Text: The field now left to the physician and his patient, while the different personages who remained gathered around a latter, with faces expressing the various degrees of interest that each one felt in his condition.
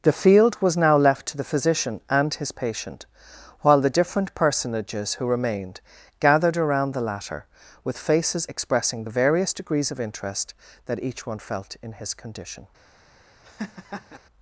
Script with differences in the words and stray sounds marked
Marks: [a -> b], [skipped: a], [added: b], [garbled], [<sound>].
The field [added: was] now left to the physician and his patient, while the different personages who remained gathered around [a -> the] latter, with faces expressing the various degrees of interest that each one felt in his condition. [laugh]